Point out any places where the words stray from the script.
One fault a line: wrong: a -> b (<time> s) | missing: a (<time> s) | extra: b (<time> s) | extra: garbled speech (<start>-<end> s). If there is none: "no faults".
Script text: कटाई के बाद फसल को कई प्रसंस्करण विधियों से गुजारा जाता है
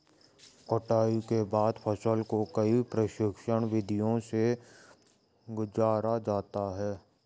no faults